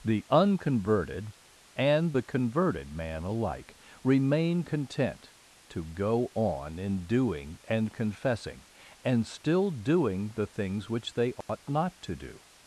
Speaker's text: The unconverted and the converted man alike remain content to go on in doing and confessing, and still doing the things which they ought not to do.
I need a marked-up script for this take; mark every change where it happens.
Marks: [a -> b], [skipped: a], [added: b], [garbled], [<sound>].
The unconverted and the converted man alike remain content to go on in doing and confessing, and still doing the things which they ought [dropout] not to do.